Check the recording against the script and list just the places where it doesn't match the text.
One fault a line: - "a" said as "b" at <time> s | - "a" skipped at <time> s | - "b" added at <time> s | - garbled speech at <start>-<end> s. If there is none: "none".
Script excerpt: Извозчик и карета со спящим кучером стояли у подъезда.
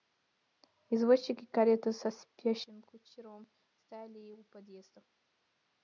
none